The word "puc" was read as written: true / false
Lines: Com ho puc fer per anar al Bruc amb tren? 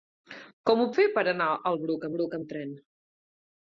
false